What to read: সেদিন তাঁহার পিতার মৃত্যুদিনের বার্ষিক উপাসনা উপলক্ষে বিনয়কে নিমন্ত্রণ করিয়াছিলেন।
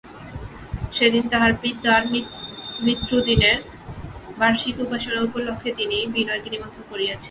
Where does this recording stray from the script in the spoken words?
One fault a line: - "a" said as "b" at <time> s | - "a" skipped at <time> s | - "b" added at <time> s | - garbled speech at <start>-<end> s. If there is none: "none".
- "তিনি" added at 5.8 s